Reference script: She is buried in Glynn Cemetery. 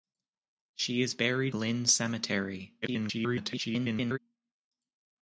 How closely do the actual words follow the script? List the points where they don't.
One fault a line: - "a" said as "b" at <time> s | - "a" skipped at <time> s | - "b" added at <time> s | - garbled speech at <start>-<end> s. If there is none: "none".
- "in" skipped at 1.6 s
- garbled speech at 2.8-4.2 s